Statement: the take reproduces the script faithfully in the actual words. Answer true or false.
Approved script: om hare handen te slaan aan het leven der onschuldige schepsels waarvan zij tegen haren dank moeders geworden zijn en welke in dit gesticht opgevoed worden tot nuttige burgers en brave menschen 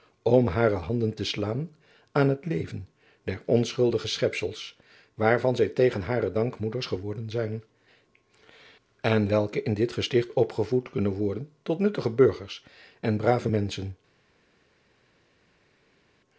false